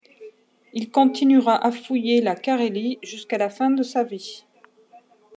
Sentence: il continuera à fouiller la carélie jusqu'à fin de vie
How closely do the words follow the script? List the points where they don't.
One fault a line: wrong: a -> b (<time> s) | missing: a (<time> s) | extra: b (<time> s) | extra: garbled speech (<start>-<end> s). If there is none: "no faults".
extra: la (3.4 s)
extra: sa (3.8 s)